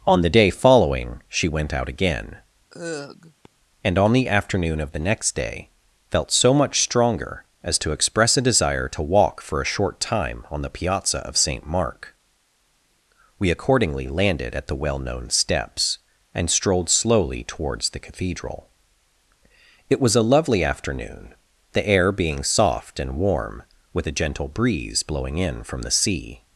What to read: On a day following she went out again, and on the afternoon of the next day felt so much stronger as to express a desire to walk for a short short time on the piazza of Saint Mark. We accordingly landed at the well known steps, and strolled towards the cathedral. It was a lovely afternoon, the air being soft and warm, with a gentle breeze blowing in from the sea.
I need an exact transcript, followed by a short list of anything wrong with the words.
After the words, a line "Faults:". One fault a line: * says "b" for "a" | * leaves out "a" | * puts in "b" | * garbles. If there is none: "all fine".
On the day following she went out again, and on the afternoon of the next day felt so much stronger as to express a desire to walk for a short time on the piazza of Saint Mark. We accordingly landed at the well known steps, and strolled slowly towards the cathedral. It was a lovely afternoon, the air being soft and warm, with a gentle breeze blowing in from the sea.
Faults:
* says "the" for "a"
* leaves out "short"
* puts in "slowly"